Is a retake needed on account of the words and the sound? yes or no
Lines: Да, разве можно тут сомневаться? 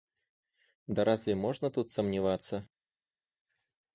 no